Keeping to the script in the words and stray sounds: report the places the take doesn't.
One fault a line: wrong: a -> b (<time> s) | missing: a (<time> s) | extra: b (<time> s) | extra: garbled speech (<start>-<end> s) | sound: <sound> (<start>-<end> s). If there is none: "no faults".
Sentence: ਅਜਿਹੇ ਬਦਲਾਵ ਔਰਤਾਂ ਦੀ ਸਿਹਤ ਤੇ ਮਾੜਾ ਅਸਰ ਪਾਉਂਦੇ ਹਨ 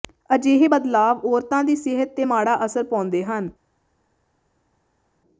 no faults